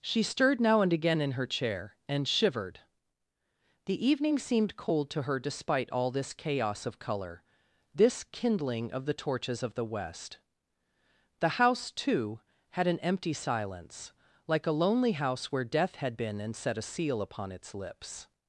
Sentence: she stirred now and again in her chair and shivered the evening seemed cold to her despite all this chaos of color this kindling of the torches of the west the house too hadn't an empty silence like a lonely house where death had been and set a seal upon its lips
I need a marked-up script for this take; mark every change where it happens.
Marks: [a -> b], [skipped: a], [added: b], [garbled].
she stirred now and again in her chair and shivered the evening seemed cold to her despite all this chaos of color this kindling of the torches of the west the house too [hadn't -> had] an empty silence like a lonely house where death had been and set a seal upon its lips